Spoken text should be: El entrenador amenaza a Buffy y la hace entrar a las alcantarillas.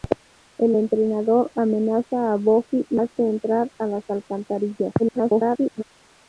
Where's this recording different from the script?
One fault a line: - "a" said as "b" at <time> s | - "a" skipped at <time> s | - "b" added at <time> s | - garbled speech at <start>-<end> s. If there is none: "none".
- "la" skipped at 3.0 s
- garbled speech at 5.0-5.8 s